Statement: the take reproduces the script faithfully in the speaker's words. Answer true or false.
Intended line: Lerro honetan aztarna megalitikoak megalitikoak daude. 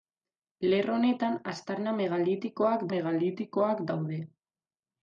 true